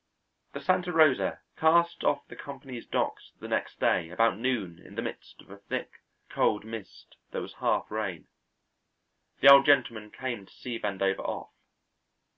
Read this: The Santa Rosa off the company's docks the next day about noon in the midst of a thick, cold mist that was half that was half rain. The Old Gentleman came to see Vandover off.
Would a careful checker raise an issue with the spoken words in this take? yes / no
yes